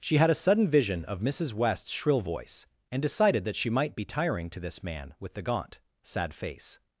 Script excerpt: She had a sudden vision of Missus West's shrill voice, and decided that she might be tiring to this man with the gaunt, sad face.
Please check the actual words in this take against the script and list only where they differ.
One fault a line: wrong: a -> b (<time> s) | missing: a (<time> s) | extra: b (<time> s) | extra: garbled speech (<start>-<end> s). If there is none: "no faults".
no faults